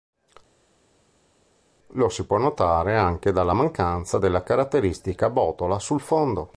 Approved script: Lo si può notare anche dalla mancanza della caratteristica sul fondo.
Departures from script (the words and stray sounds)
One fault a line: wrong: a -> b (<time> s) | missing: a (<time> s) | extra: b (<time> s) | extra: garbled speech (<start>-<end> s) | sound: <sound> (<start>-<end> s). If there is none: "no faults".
extra: botola (5.3 s)